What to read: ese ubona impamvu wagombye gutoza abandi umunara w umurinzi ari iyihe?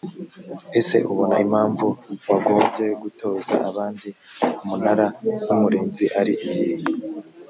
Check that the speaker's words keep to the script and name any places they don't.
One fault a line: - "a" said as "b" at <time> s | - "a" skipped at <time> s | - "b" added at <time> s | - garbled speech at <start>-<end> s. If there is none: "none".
none